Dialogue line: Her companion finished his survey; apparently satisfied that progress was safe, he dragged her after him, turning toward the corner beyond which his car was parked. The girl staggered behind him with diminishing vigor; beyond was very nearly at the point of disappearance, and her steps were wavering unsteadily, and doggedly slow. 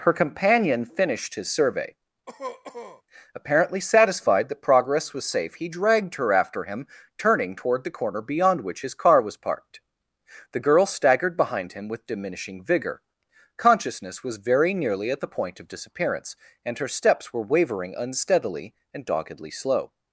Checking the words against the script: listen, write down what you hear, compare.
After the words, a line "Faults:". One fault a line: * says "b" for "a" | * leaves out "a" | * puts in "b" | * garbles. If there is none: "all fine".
Her companion finished his survey; apparently satisfied that progress was safe, he dragged her after him, turning toward the corner beyond which his car was parked. The girl staggered behind him with diminishing vigor; consciousness was very nearly at the point of disappearance, and her steps were wavering unsteadily, and doggedly slow.
Faults:
* says "consciousness" for "beyond"